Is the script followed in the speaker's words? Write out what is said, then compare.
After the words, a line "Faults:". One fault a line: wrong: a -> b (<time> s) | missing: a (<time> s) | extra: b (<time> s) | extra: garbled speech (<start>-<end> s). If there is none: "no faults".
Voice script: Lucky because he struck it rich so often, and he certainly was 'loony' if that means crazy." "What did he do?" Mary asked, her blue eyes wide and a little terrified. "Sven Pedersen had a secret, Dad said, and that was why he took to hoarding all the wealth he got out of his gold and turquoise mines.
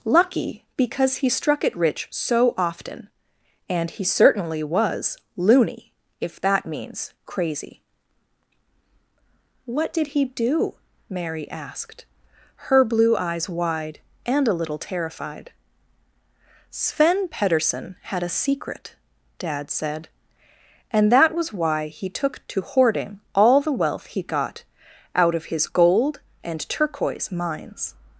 Lucky because he struck it rich so often, and he certainly was 'loony' if that means crazy." "What did he do?" Mary asked, her blue eyes wide and a little terrified. "Sven Pedersen had a secret, Dad said, and that was why he took to hoarding all the wealth he got out of his gold and turquoise mines.
Faults:
no faults